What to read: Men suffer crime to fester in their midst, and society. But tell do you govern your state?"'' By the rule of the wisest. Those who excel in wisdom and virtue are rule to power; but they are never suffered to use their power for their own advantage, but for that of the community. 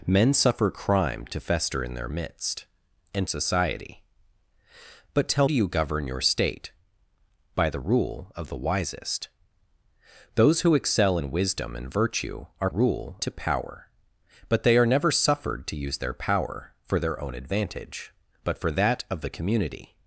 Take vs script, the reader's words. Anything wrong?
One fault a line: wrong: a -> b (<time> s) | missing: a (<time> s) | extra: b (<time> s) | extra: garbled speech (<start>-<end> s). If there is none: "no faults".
no faults